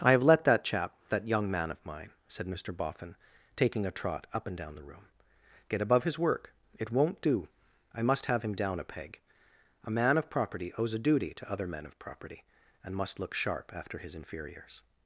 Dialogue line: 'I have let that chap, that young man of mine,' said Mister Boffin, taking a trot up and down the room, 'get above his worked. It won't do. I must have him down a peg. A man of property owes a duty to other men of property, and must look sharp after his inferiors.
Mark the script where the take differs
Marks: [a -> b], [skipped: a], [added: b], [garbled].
'I have let that chap, that young man of mine,' said Mister Boffin, taking a trot up and down the room, 'get above his [worked. -> work] It won't do. I must have him down a peg. A man of property owes a duty to other men of property, and must look sharp after his inferiors.